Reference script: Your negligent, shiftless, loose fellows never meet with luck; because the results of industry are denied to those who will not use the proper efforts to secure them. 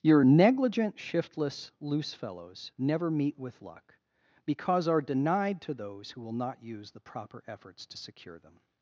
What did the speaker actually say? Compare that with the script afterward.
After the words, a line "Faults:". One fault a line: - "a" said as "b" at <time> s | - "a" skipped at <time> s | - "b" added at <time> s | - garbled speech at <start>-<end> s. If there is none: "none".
Your negligent, shiftless, loose fellows never meet with luck; because are denied to those who will not use the proper efforts to secure them.
Faults:
- "the results of industry" skipped at 4.9 s